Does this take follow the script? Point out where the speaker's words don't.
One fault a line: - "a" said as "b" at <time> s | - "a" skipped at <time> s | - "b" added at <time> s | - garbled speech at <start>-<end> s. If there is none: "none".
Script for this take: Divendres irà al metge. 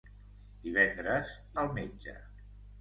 - "irà" skipped at 1.4 s